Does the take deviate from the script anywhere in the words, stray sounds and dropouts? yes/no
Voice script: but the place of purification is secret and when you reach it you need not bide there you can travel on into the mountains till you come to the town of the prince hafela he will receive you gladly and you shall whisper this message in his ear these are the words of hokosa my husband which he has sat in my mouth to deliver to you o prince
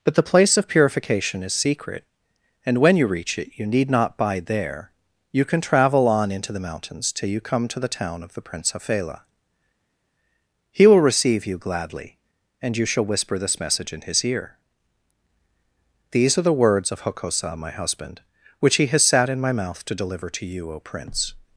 no